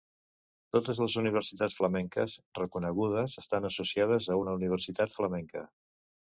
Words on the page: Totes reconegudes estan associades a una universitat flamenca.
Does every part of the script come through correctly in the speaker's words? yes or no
no